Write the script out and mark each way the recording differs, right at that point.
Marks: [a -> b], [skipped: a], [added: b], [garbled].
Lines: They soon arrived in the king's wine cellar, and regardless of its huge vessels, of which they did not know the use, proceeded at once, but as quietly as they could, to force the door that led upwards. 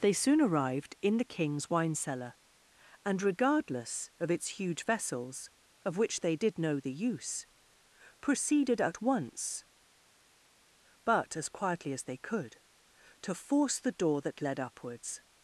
They soon arrived in the king's wine cellar, and regardless of its huge vessels, of which they did [skipped: not] know the use, proceeded at once, but as quietly as they could, to force the door that led upwards.